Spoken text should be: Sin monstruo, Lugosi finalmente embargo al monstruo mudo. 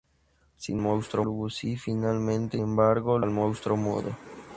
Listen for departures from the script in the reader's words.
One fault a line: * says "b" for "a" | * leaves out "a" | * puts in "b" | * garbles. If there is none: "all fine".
all fine